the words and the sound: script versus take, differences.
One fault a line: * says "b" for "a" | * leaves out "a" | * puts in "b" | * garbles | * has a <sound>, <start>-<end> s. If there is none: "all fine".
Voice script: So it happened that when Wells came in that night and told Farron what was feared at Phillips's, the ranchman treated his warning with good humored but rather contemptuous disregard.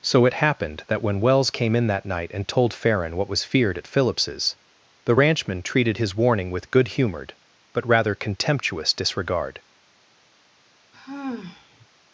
* has a sigh, 10.9-11.9 s